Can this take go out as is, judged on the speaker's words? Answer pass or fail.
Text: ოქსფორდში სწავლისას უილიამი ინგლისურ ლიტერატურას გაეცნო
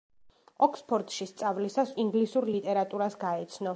fail